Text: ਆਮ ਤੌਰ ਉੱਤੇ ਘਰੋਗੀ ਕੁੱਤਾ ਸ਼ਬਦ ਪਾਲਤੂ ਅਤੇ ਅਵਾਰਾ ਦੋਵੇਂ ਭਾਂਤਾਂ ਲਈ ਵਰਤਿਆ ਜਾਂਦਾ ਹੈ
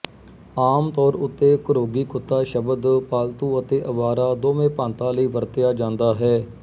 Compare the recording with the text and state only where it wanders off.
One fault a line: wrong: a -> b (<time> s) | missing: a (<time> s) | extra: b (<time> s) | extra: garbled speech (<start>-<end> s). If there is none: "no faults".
no faults